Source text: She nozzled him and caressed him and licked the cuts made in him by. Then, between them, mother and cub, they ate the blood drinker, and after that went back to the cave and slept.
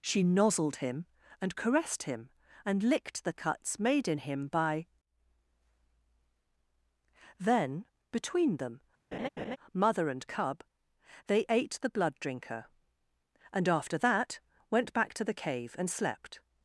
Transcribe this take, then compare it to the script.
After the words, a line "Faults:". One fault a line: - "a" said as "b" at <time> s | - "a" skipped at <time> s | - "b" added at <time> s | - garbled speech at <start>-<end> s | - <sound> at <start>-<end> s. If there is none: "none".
She nozzled him and caressed him and licked the cuts made in him by. Then, between them, mother and cub, they ate the blood drinker, and after that went back to the cave and slept.
Faults:
- laugh at 9.1-9.6 s